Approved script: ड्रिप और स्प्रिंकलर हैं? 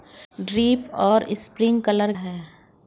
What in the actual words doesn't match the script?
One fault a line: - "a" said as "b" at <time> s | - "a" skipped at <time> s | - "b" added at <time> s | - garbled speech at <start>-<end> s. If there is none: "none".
none